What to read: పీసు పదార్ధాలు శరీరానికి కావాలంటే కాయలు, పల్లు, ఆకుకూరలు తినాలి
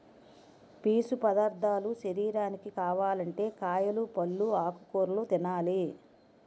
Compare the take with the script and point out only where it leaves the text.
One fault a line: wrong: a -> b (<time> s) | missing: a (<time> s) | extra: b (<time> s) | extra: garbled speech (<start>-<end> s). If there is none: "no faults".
no faults